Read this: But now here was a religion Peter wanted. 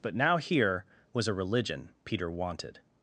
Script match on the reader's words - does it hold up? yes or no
yes